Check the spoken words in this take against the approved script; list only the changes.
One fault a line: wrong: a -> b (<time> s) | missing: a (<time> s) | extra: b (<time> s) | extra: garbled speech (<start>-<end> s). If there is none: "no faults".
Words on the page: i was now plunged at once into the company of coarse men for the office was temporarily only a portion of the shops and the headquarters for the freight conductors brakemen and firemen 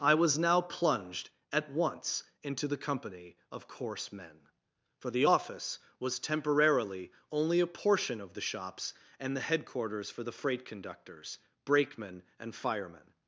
no faults